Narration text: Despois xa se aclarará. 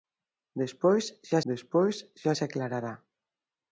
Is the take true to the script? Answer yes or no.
no